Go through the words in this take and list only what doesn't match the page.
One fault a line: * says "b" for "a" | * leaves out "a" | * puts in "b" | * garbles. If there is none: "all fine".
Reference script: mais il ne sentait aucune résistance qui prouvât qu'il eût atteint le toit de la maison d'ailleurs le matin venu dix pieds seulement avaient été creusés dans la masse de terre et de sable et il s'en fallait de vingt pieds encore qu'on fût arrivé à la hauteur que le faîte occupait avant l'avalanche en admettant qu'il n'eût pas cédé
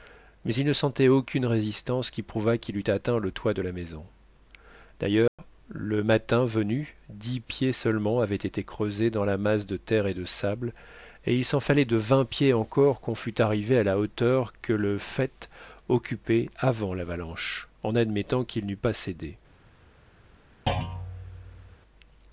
all fine